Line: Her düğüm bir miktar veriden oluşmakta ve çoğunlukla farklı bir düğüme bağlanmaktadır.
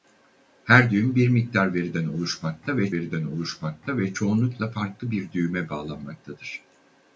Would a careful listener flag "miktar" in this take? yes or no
no